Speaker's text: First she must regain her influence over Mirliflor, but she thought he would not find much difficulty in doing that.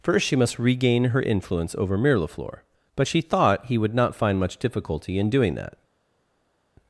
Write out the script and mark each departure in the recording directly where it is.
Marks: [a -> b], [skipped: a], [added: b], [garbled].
First she must regain her influence over Mirliflor, but she thought he would not find much difficulty in doing that.